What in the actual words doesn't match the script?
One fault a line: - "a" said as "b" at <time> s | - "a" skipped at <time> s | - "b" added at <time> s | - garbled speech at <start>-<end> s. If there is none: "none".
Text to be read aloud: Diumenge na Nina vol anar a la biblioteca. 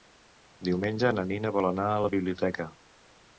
none